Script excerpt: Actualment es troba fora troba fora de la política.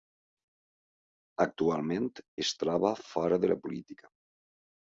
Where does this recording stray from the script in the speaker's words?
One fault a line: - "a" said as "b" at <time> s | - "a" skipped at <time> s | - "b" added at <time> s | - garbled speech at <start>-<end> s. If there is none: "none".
- "troba fora" skipped at 3.4 s